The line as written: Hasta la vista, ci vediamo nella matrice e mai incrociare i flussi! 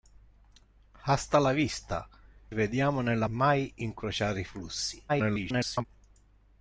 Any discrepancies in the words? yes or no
yes